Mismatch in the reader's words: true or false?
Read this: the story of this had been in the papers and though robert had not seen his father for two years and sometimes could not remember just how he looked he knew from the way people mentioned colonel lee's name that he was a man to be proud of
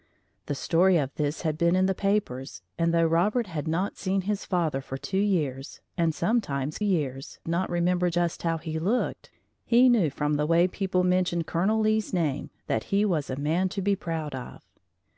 true